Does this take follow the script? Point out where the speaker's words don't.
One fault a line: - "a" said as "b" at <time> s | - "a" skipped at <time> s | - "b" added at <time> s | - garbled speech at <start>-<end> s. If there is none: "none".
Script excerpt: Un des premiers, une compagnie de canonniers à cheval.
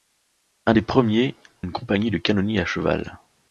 none